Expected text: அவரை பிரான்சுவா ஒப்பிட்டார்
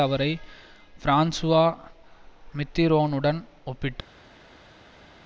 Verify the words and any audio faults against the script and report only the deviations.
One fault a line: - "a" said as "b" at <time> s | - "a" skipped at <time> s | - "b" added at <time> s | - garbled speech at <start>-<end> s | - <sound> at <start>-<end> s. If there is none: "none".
- "மித்திரோனுடன்" added at 2.6 s